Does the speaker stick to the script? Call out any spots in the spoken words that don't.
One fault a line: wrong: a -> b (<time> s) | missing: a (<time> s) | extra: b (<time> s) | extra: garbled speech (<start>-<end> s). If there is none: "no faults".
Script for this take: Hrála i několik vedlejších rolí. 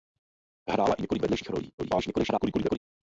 extra: garbled speech (1.8-2.8 s)